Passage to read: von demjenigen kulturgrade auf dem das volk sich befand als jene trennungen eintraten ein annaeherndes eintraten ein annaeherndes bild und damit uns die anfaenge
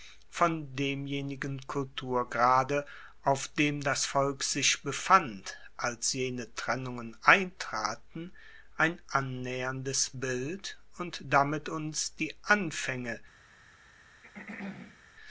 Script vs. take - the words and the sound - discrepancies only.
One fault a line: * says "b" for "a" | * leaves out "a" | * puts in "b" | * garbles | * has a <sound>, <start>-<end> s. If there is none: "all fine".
* leaves out "eintraten ein annaeherndes"
* has a throat clearing, 14.2-15.0 s